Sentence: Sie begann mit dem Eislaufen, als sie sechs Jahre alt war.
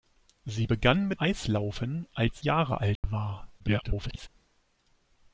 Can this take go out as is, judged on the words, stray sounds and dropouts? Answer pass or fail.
fail